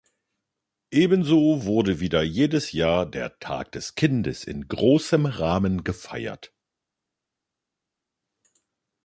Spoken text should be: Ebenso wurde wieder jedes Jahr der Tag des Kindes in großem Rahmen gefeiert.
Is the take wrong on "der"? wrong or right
right